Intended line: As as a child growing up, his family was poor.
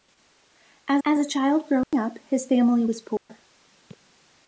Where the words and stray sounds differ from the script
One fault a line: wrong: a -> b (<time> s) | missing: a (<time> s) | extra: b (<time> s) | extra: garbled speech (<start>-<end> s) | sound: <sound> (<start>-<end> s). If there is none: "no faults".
sound: dropout (1.8-1.9 s)
sound: dropout (3.2-3.3 s)